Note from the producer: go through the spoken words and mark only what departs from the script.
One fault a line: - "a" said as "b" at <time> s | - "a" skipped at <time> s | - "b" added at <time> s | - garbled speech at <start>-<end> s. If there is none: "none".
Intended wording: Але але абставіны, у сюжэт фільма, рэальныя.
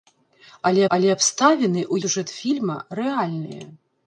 none